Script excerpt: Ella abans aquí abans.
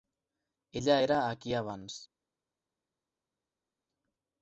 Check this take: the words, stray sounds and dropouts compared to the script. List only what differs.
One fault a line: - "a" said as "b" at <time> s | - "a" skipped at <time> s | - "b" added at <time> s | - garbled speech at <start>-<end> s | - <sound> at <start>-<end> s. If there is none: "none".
- "abans" said as "era" at 1.0 s